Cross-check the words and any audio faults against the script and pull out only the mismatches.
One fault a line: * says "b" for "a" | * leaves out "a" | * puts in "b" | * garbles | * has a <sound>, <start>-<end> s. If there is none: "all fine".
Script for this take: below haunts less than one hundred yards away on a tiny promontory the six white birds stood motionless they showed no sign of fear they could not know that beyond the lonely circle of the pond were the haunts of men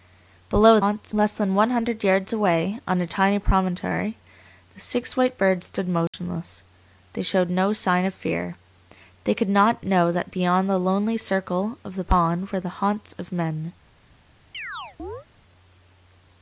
* has a dropout, 6.1-6.1 s
* has a chirp, 14.5-15.3 s